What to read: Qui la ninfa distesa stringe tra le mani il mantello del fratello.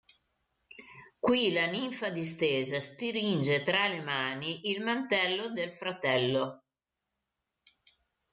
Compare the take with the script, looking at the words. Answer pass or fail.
pass